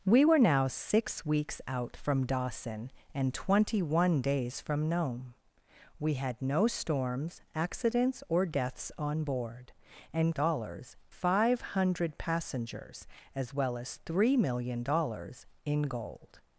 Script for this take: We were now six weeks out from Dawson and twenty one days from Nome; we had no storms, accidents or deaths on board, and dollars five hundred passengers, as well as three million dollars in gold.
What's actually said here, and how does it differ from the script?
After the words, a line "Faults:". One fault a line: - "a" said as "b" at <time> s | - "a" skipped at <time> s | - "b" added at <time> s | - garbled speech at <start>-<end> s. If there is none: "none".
We were now six weeks out from Dawson and twenty one days from Nome; we had no storms, accidents or deaths on board, and dollars five hundred passengers, as well as three million dollars in gold.
Faults:
none